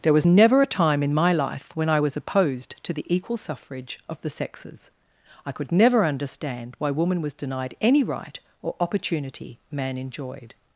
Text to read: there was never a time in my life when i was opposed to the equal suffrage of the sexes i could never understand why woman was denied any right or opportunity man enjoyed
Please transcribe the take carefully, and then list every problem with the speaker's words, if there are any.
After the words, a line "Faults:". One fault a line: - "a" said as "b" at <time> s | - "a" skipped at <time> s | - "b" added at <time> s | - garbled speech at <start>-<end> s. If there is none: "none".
there was never a time in my life when i was opposed to the equal suffrage of the sexes i could never understand why woman was denied any right or opportunity man enjoyed
Faults:
none